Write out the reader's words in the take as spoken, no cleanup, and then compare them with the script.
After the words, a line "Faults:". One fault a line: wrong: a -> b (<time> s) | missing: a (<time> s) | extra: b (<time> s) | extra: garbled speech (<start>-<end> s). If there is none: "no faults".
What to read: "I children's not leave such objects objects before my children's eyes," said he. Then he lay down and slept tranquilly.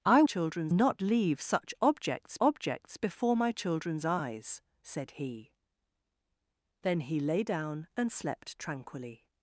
"I children's not leave such objects objects before my children's eyes," said he. Then he lay down and slept tranquilly.
Faults:
no faults